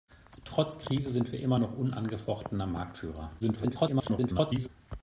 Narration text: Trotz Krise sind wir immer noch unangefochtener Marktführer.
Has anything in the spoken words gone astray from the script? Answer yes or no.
yes